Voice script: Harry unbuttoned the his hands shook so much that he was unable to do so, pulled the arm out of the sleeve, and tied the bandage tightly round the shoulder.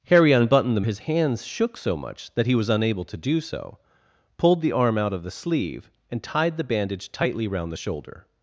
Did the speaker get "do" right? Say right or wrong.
right